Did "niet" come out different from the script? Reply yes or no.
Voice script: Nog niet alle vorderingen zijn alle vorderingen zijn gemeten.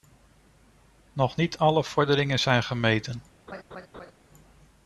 no